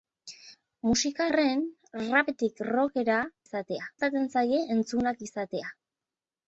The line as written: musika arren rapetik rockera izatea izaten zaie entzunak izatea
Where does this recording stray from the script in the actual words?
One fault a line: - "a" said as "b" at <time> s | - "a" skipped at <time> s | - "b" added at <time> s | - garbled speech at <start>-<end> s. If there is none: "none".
none